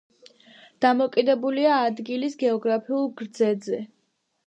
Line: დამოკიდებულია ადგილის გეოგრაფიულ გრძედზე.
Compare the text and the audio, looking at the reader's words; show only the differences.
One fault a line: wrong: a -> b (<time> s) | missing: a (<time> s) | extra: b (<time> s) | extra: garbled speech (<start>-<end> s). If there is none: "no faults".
no faults